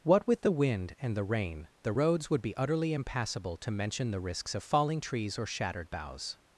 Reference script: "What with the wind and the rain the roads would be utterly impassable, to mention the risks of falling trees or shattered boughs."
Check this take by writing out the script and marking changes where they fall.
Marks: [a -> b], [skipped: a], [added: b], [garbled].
"What with the wind and the rain the roads would be utterly impassable, to mention the risks of falling trees or shattered boughs."